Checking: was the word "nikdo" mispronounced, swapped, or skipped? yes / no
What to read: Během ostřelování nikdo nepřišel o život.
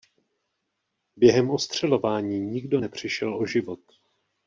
no